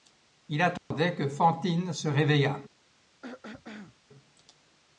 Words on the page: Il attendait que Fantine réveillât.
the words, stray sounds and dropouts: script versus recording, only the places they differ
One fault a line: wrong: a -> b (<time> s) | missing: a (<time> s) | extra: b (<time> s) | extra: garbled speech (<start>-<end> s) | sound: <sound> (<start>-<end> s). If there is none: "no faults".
sound: dropout (0.8-0.9 s)
extra: se (1.9 s)
sound: throat clearing (3.2-4.0 s)